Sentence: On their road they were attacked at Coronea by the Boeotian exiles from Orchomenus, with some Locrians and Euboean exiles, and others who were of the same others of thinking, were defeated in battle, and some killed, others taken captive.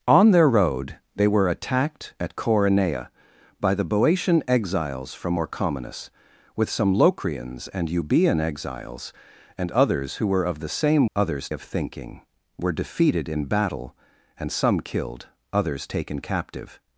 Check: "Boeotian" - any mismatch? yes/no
no